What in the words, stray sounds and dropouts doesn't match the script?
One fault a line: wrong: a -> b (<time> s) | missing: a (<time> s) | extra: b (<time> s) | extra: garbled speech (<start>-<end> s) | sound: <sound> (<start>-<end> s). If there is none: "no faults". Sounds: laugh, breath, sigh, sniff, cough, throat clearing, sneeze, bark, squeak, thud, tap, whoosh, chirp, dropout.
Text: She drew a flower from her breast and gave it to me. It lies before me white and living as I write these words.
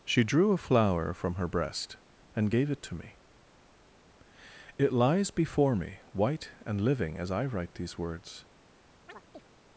sound: chirp (9.1-9.5 s)